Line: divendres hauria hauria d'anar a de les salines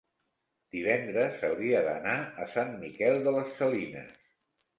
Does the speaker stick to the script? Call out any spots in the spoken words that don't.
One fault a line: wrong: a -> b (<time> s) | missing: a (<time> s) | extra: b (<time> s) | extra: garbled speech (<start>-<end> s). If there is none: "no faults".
missing: hauria (1.8 s)
extra: sant miquel (2.5 s)